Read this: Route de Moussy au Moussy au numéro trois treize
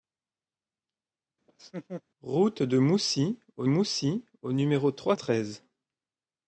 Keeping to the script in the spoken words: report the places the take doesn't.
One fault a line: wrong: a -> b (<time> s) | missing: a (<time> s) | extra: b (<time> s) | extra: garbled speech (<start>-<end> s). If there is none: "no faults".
no faults